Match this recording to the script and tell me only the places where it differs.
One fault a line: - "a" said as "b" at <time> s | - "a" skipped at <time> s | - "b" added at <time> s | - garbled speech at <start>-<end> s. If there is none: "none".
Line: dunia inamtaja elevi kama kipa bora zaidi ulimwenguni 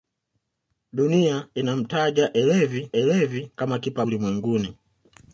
- "elevi" added at 2.9 s
- "bora zaidi" skipped at 4.0 s